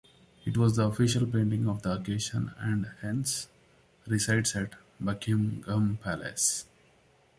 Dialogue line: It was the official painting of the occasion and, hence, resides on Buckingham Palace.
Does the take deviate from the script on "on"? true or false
true